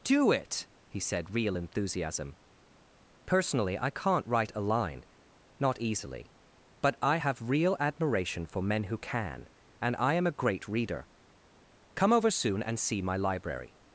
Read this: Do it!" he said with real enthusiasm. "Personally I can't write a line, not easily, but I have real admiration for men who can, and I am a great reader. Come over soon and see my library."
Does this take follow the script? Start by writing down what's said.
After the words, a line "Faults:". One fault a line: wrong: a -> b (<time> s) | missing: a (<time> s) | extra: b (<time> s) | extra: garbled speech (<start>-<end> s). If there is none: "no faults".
Do it!" he said real enthusiasm. "Personally I can't write a line, not easily, but I have real admiration for men who can, and I am a great reader. Come over soon and see my library."
Faults:
missing: with (1.3 s)